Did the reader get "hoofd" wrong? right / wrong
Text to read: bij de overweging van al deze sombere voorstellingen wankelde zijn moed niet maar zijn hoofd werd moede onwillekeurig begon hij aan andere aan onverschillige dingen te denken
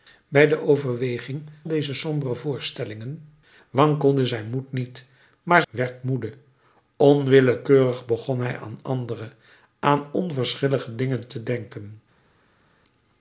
wrong